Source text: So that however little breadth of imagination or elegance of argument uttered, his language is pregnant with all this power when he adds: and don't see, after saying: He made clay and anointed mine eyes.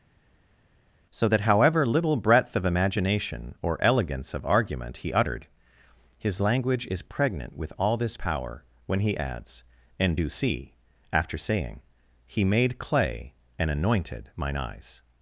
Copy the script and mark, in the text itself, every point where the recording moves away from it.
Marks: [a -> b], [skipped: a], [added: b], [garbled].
So that however little breadth of imagination or elegance of argument [added: he] uttered, his language is pregnant with all this power when he adds: and [don't -> do] see, after saying: He made clay and anointed mine eyes.